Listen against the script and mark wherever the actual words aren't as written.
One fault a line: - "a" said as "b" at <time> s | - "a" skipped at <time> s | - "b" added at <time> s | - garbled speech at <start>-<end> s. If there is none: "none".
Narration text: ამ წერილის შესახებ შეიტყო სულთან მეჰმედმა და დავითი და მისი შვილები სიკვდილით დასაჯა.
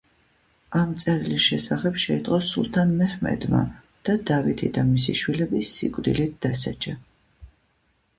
none